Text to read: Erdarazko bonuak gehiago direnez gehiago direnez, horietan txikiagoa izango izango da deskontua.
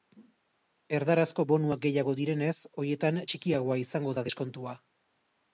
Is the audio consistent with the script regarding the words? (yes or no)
no